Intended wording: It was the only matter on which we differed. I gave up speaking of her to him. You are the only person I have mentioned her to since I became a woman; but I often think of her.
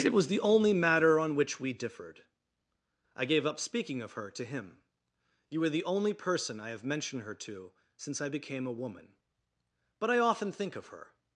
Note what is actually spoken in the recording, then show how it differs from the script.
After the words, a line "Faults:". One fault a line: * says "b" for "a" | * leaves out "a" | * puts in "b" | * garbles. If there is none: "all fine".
It was the only matter on which we differed. I gave up speaking of her to him. You are the only person I have mentioned her to since I became a woman; but I often think of her.
Faults:
all fine